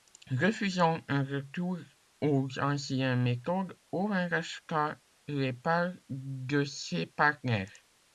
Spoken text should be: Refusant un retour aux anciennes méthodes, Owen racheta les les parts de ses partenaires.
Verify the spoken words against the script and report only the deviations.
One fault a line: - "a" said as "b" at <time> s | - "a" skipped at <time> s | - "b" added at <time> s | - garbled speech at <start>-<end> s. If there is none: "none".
- "les" skipped at 5.5 s